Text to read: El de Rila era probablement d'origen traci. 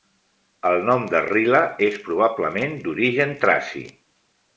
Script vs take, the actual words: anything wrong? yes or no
yes